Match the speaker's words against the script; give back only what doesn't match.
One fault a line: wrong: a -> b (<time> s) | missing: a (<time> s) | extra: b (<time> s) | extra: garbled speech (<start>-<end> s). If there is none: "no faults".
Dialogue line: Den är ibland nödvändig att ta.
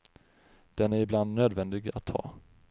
no faults